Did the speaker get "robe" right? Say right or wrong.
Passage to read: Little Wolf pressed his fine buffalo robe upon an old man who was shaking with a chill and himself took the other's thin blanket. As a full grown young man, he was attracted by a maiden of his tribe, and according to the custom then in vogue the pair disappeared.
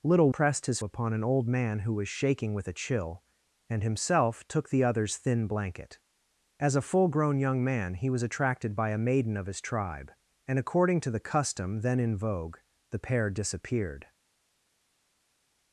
wrong